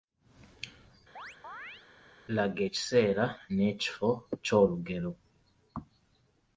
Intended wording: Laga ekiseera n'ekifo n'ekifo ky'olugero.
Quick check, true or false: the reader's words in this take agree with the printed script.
false